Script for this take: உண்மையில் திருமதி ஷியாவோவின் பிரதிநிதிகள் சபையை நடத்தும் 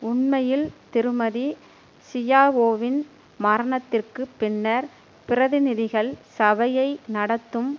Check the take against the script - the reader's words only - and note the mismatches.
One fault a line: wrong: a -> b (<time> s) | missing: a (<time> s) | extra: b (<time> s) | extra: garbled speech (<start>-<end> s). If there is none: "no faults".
extra: மரணத்திற்கு பின்னர் (3.4 s)